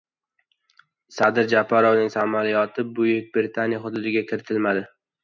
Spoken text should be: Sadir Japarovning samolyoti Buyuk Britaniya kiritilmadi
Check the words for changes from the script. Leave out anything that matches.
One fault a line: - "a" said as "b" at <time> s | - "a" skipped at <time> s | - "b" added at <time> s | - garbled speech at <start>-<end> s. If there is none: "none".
- "hududiga" added at 3.9 s